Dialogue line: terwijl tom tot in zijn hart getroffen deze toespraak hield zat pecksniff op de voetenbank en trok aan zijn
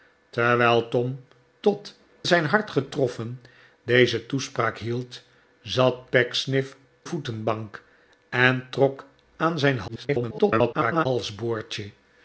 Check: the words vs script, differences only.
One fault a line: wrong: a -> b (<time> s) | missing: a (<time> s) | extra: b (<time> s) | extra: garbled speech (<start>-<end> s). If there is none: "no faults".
missing: in (2.0 s)
missing: op de (6.8 s)
extra: garbled speech (9.9-11.1 s)